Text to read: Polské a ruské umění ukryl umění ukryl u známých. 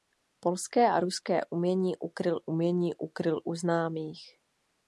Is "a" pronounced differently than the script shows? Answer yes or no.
no